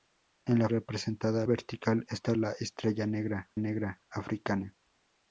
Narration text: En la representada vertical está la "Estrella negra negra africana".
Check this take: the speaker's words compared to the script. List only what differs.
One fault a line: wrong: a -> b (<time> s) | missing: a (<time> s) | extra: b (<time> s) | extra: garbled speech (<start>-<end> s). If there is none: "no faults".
no faults